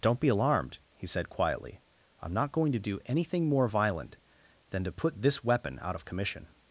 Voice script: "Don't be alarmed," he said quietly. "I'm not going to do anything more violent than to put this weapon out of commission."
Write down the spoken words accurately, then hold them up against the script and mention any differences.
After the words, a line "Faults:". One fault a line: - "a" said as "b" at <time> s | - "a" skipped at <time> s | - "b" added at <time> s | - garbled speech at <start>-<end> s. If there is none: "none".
"Don't be alarmed," he said quietly. "I'm not going to do anything more violent than to put this weapon out of commission."
Faults:
none